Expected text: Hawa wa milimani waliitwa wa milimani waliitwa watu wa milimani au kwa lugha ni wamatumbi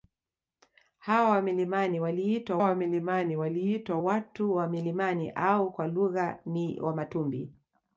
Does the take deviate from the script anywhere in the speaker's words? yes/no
no